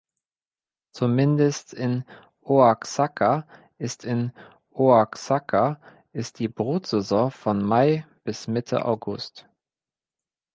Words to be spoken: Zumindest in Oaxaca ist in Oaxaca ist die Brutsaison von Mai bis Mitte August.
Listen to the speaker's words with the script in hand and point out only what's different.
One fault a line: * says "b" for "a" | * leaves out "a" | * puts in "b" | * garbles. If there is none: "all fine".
all fine